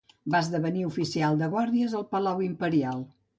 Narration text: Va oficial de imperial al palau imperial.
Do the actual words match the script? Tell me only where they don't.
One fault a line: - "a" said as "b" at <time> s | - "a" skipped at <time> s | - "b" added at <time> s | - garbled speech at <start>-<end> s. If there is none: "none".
- "esdevenir" added at 0.5 s
- "imperial" said as "guàrdies" at 1.6 s